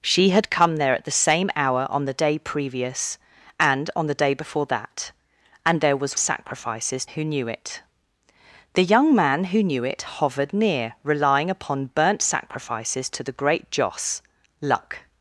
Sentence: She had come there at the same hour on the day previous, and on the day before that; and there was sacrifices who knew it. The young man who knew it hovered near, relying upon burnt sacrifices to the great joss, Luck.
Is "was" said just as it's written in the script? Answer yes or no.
yes